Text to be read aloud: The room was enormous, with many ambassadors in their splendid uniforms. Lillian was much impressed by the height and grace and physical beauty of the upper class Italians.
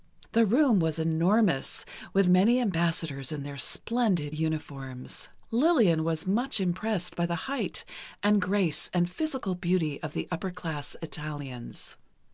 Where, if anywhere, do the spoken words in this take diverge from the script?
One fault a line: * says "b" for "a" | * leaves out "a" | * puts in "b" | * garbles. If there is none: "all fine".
all fine